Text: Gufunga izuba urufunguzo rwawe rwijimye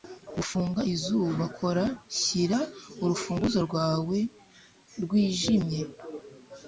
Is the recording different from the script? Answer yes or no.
yes